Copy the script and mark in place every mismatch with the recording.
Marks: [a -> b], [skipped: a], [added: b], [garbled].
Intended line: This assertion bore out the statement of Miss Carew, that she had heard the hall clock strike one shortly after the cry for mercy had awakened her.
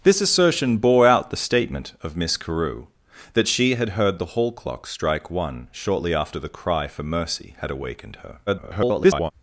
This assertion bore out the statement of Miss Carew, that she had heard the hall clock strike one shortly after the cry for mercy had awakened her. [garbled]